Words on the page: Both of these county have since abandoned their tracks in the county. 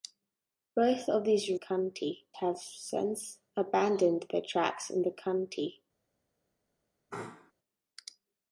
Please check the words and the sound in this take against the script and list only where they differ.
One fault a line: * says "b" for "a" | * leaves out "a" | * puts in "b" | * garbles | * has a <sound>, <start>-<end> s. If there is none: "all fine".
* has a sneeze, 7.1-7.5 s